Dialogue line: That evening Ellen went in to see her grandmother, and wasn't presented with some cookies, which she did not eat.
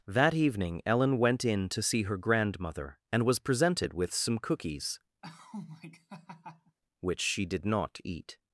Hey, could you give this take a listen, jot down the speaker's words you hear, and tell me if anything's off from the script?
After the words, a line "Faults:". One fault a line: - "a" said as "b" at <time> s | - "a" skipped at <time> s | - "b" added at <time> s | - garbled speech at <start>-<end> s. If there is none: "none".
That evening Ellen went in to see her grandmother, and was presented with some cookies, which she did not eat.
Faults:
- "wasn't" said as "was" at 3.2 s